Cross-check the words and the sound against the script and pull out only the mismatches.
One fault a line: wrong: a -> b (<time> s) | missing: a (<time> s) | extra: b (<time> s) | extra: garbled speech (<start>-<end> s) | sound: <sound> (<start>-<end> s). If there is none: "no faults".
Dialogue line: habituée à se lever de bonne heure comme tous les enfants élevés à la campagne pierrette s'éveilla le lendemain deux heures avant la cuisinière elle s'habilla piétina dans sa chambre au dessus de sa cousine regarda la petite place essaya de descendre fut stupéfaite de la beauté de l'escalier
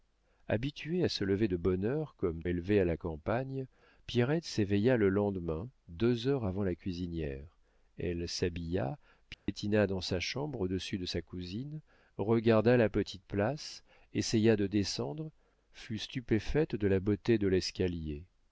missing: tous les enfants (2.4 s)
sound: dropout (9.3-9.5 s)